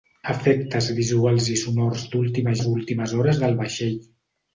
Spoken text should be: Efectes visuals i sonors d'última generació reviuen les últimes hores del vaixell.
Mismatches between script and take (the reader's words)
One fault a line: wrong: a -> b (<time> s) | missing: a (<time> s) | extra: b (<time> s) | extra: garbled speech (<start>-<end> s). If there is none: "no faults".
missing: generació reviuen (2.5 s)